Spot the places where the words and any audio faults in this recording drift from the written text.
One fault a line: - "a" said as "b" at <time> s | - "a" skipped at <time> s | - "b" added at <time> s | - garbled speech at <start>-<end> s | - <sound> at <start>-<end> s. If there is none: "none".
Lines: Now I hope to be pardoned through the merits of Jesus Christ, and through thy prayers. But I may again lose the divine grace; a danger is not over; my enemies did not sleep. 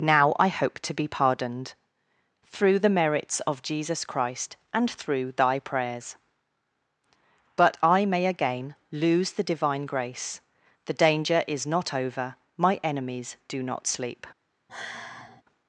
- "a" said as "the" at 10.8 s
- "did" said as "do" at 13.5 s
- sigh at 14.7-15.4 s